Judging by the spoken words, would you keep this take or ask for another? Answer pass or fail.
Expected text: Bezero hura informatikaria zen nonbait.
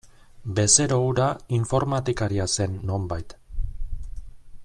pass